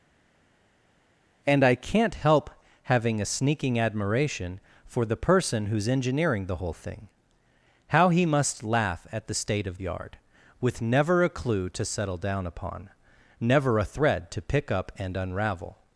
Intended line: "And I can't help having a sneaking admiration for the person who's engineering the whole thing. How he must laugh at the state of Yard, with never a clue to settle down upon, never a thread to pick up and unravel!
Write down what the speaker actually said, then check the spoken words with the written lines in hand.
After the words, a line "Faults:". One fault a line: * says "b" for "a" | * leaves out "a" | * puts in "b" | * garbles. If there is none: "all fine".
"And I can't help having a sneaking admiration for the person who's engineering the whole thing. How he must laugh at the state of Yard, with never a clue to settle down upon, never a thread to pick up and unravel!
Faults:
all fine